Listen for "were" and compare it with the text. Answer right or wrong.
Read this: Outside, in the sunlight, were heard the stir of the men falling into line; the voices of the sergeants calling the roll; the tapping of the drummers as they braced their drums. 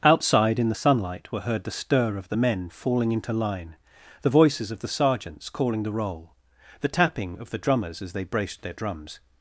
right